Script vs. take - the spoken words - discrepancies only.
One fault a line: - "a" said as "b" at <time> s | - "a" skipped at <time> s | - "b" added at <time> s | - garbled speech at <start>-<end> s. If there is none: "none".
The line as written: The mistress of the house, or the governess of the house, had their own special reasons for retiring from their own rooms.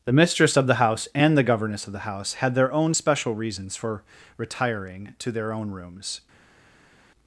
- "or" said as "and" at 1.1 s
- "from" said as "to" at 5.2 s